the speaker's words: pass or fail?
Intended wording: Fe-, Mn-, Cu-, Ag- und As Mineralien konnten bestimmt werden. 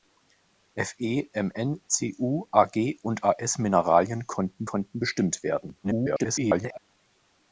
fail